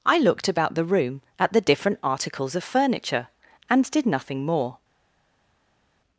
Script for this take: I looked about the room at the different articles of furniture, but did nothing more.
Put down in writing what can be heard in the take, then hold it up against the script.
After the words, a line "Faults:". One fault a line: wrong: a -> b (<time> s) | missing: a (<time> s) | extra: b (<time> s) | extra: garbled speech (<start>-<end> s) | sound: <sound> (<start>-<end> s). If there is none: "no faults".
I looked about the room at the different articles of furniture, and did nothing more.
Faults:
wrong: but -> and (3.7 s)